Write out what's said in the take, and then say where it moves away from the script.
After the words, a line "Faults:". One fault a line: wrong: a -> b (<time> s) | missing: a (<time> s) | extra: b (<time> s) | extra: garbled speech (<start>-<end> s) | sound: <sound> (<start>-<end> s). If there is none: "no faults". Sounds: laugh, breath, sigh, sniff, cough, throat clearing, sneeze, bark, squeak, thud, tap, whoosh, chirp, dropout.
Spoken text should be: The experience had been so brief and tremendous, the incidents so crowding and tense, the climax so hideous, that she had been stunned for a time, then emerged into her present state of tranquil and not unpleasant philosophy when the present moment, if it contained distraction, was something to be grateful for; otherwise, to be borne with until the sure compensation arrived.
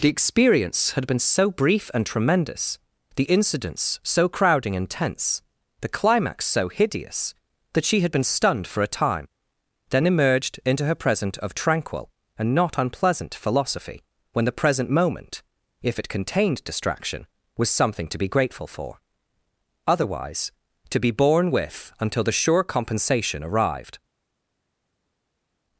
The experience had been so brief and tremendous, the incidents so crowding and tense, the climax so hideous, that she had been stunned for a time, then emerged into her present of tranquil and not unpleasant philosophy when the present moment, if it contained distraction, was something to be grateful for; otherwise, to be borne with until the sure compensation arrived.
Faults:
missing: state (11.4 s)